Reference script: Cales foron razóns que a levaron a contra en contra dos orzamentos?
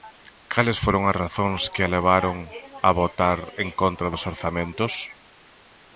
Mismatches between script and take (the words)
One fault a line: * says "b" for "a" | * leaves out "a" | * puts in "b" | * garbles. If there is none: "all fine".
* puts in "as"
* says "votar" for "contra"